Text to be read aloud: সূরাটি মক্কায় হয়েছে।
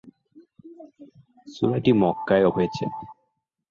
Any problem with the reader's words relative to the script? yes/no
no